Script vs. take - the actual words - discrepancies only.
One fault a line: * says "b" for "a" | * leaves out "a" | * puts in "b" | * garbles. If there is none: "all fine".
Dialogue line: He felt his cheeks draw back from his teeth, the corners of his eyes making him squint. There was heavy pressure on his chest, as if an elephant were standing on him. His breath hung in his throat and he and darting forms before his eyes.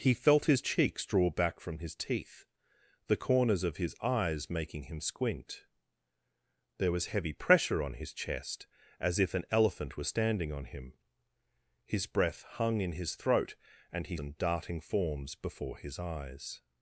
all fine